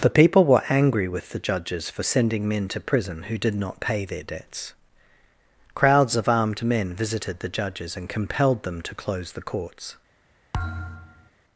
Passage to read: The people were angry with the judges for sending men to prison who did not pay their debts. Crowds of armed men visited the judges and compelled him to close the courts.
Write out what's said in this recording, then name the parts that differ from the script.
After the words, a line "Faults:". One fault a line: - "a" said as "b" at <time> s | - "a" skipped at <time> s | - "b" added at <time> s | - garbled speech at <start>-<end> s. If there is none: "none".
The people were angry with the judges for sending men to prison who did not pay their debts. Crowds of armed men visited the judges and compelled them to close the courts.
Faults:
- "him" said as "them" at 8.6 s